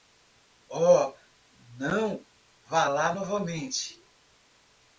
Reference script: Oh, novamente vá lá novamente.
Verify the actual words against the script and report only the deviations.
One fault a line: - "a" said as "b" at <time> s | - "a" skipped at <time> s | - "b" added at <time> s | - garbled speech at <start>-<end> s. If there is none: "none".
- "novamente" said as "não" at 1.8 s